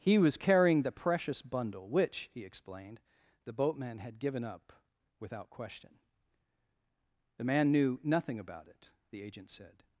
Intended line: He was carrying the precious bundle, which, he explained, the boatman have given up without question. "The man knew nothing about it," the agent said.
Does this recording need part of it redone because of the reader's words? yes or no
yes